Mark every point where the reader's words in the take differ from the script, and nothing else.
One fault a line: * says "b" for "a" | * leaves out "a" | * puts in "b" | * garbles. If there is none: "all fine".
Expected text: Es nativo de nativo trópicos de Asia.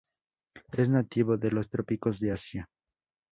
* says "los" for "nativo"